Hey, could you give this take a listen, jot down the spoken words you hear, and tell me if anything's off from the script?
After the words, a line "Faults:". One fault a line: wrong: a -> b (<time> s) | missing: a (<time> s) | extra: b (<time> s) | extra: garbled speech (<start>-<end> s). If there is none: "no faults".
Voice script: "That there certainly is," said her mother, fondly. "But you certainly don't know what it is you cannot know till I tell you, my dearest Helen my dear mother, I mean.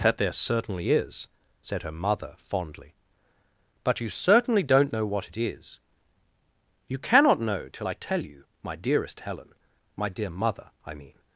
"That there certainly is," said her mother, fondly. "But you certainly don't know what it is you cannot know till I tell you, my dearest Helen my dear mother, I mean.
Faults:
no faults